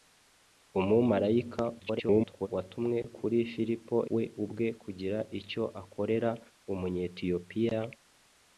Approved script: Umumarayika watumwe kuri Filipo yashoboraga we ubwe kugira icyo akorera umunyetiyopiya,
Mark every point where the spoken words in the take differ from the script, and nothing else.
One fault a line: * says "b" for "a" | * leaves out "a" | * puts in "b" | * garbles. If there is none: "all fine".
* garbles
* leaves out "yashoboraga"